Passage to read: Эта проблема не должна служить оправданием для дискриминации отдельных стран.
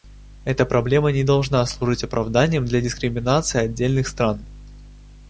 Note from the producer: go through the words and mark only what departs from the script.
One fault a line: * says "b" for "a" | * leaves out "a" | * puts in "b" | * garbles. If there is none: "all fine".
all fine